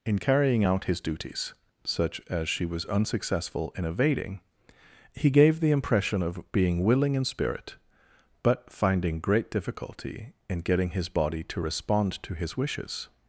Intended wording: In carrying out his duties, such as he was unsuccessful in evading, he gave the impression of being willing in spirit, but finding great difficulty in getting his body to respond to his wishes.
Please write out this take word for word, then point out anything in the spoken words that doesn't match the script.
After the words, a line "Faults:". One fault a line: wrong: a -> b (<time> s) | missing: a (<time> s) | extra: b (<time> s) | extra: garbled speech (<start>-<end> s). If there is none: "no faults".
In carrying out his duties, such as she was unsuccessful in evading, he gave the impression of being willing in spirit, but finding great difficulty in getting his body to respond to his wishes.
Faults:
wrong: he -> she (2.5 s)